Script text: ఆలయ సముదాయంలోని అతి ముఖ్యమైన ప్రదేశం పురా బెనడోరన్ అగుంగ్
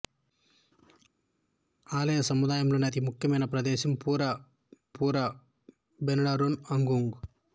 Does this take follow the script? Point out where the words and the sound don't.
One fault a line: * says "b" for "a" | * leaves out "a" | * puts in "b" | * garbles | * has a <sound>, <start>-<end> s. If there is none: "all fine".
* puts in "పురా"